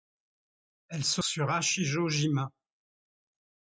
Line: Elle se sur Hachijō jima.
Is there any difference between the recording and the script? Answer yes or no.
no